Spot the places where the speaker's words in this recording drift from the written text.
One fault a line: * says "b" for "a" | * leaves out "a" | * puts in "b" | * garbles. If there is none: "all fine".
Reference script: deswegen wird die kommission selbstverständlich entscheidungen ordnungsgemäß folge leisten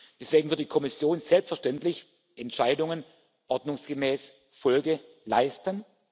all fine